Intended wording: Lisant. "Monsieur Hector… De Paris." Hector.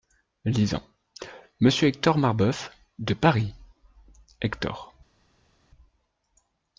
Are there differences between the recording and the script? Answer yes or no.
yes